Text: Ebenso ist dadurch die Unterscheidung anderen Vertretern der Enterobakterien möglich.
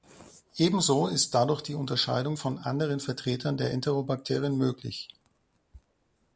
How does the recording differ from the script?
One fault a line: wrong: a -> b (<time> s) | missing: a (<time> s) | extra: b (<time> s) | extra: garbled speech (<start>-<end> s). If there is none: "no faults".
extra: von (2.4 s)